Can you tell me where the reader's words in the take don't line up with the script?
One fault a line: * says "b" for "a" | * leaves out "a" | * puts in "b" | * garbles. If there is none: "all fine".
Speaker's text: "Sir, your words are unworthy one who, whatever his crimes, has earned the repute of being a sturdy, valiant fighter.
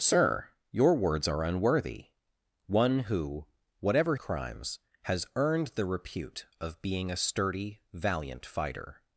* leaves out "his"